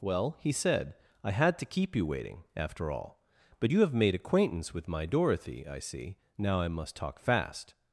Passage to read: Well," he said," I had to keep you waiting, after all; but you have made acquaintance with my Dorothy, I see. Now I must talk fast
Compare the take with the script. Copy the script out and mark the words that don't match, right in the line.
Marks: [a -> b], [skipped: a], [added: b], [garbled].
Well," he said," I had to keep you waiting, after all; but you have made acquaintance with my Dorothy, I see. Now I must talk fast